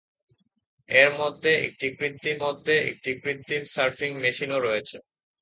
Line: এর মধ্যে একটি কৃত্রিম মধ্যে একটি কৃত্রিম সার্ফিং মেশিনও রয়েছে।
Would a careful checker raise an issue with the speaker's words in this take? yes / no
no